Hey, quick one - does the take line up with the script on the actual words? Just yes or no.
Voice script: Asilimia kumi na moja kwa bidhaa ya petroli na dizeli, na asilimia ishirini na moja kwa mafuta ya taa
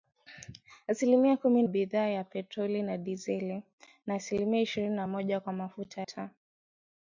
no